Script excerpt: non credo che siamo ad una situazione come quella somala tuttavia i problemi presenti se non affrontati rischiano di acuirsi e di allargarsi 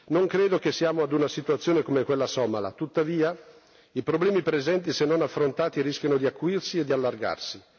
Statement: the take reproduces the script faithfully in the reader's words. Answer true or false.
true